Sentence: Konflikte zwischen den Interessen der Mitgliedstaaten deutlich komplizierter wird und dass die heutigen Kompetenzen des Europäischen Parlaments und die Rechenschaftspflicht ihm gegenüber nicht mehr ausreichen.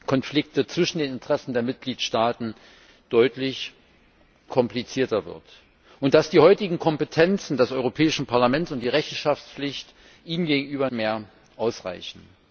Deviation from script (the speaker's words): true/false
true